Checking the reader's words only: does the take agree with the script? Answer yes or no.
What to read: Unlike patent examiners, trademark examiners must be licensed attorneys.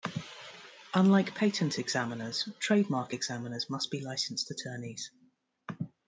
yes